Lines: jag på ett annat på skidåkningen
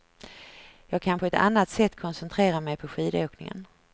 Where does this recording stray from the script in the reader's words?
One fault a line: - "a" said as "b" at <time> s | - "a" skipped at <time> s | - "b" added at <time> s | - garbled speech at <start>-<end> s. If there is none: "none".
- "kan" added at 1.0 s
- "sätt koncentrera mig" added at 1.7 s